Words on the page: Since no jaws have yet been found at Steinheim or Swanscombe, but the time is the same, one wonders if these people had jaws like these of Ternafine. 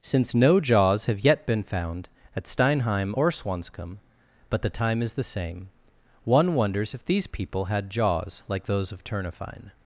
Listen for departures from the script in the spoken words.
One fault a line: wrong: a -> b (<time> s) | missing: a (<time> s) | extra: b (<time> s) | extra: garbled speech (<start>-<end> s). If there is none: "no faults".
wrong: these -> those (8.7 s)